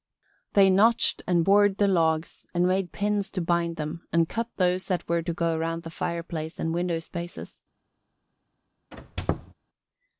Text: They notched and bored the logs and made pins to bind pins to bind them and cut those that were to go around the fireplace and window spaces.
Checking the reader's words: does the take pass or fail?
fail